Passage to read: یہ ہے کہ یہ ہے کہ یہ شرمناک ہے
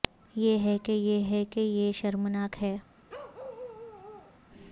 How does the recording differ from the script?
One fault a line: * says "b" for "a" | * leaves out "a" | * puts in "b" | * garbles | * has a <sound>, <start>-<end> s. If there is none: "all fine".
* has a bark, 3.1-4.4 s